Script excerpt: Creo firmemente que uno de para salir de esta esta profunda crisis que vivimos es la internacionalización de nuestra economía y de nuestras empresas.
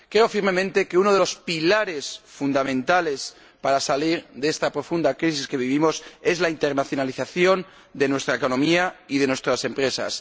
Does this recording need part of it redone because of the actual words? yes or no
yes